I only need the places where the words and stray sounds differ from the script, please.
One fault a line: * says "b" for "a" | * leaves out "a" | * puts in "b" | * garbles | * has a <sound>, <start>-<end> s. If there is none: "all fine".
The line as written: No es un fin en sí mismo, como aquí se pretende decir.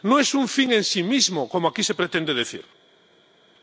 all fine